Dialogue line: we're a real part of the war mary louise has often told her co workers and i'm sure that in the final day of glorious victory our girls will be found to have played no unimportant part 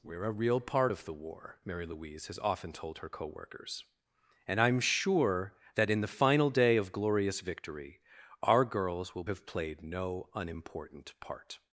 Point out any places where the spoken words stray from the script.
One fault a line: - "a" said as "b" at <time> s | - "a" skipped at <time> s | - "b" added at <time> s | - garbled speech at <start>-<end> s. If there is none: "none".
- "be found to" skipped at 9.2 s